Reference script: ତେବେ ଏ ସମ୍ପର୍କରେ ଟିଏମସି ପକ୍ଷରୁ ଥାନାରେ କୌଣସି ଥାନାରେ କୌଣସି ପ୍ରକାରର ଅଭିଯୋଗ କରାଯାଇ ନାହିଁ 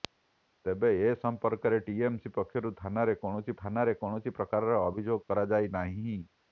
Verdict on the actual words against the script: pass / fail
pass